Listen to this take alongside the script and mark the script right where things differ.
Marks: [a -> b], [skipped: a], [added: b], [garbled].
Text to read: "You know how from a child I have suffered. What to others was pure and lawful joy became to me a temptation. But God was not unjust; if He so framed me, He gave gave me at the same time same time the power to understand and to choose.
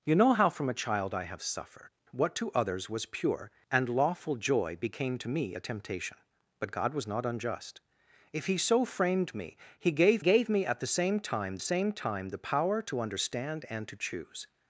"You know how from a child I have suffered. What to others was pure and lawful joy became to me a temptation. But God was not unjust; if He so framed me, He gave gave me at the same time same time the power to understand and to choose.